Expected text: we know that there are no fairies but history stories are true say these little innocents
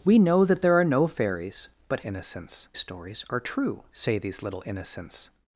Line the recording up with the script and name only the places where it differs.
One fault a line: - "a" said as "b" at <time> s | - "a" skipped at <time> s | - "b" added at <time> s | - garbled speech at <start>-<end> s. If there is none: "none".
- "history" said as "innocents" at 2.0 s